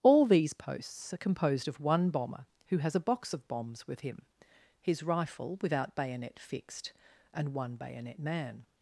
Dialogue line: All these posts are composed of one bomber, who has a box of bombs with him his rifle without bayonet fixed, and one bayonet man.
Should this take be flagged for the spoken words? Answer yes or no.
no